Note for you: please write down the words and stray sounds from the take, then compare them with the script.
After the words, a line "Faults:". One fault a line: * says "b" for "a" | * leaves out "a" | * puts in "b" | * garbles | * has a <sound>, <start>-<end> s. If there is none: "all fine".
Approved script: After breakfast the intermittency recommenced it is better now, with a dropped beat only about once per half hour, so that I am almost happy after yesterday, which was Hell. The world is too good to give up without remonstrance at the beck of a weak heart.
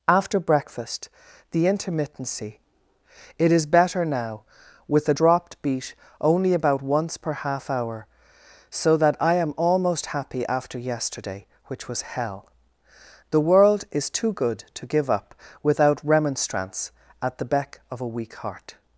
After breakfast the intermittency it is better now, with a dropped beat only about once per half hour, so that I am almost happy after yesterday, which was Hell. The world is too good to give up without remonstrance at the beck of a weak heart.
Faults:
* leaves out "recommenced"